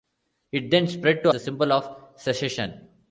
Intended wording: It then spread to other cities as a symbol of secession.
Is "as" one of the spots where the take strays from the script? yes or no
yes